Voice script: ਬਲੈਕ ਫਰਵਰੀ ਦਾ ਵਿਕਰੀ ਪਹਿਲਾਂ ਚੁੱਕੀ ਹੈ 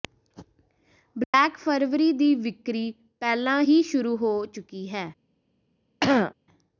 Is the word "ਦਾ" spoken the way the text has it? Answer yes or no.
no